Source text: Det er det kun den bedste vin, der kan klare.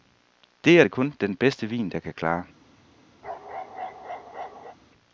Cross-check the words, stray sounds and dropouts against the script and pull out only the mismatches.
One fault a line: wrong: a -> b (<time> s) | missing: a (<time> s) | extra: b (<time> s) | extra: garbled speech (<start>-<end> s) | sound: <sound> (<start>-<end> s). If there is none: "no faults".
sound: bark (3.2-4.8 s)